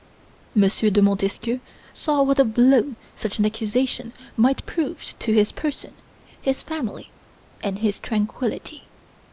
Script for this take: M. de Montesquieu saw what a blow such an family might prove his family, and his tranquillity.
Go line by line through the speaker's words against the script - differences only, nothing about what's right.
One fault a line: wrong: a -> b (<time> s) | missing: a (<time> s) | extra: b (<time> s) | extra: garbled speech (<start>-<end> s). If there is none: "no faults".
wrong: family -> accusation (3.4 s)
extra: to his person (5.2 s)